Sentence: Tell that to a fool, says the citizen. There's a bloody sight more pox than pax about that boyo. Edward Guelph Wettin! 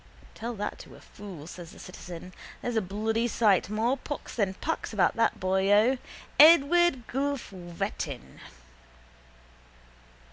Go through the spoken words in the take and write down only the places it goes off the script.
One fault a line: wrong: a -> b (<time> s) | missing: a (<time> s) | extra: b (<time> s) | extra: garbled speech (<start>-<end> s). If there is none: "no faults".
no faults